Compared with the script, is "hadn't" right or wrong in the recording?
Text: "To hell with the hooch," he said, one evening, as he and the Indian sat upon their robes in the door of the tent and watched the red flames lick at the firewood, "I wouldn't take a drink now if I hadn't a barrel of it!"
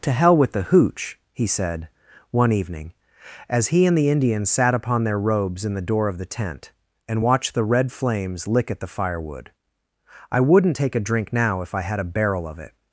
wrong